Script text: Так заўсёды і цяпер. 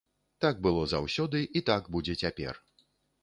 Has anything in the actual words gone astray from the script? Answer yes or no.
yes